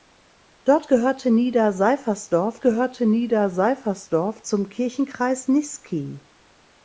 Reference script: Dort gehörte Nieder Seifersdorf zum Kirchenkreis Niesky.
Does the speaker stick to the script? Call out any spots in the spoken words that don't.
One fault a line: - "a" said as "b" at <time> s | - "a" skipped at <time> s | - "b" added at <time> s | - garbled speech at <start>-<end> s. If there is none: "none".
- "gehörte Nieder Seifersdorf" added at 2.6 s